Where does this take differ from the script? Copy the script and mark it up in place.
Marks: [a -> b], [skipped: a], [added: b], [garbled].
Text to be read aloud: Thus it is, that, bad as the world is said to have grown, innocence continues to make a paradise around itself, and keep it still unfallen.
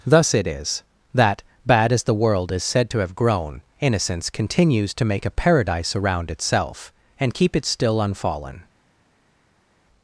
Thus it is, that, bad as the world is said to have grown, innocence continues to make a paradise around itself, and keep it still unfallen.